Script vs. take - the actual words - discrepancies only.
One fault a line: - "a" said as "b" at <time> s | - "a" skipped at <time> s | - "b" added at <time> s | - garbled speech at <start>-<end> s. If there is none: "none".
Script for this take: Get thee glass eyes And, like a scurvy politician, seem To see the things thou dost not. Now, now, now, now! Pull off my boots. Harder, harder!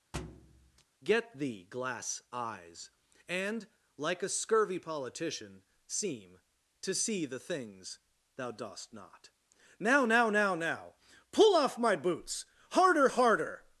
none